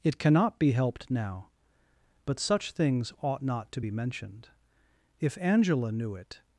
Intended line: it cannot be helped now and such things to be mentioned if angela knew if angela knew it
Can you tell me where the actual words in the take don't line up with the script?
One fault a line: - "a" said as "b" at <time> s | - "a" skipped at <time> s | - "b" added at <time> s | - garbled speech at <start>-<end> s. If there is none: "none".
- "and" said as "but" at 2.2 s
- "ought not" added at 3.2 s
- "if angela knew" skipped at 6.2 s